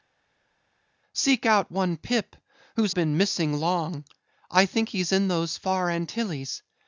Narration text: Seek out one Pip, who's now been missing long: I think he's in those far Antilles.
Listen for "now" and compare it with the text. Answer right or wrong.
wrong